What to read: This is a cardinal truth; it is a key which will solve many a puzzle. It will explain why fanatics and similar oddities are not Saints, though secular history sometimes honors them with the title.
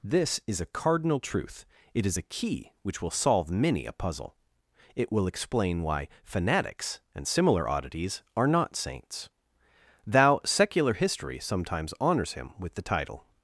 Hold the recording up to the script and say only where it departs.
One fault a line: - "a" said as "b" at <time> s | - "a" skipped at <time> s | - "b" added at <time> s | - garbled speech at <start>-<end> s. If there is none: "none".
- "though" said as "thou" at 10.1 s
- "them" said as "him" at 12.3 s